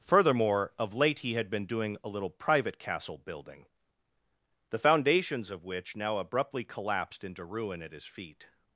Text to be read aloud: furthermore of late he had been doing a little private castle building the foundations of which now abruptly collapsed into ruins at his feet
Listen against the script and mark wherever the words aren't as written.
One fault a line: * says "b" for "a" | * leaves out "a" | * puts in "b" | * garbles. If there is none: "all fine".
* says "ruin" for "ruins"